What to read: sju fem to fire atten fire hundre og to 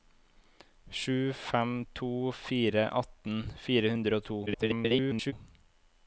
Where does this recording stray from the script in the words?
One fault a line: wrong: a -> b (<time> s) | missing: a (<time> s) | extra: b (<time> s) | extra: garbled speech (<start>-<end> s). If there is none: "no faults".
extra: garbled speech (4.5-5.3 s)